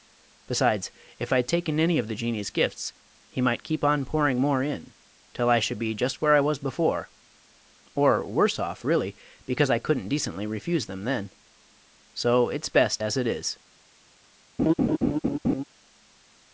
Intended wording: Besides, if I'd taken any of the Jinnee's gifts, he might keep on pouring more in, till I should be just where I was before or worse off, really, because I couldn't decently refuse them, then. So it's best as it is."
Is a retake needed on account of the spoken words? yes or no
no